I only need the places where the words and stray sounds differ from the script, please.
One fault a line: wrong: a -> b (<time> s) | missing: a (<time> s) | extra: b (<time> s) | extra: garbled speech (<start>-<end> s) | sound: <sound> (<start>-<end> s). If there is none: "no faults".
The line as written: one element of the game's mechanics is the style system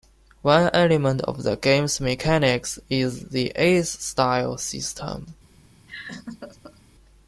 extra: ace (3.6 s)
sound: laugh (5.9-6.8 s)